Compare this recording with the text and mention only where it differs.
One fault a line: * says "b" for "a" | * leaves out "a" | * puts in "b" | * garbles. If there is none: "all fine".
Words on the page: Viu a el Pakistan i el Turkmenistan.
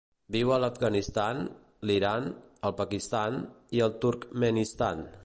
* puts in "l'Afganistan l'Iran"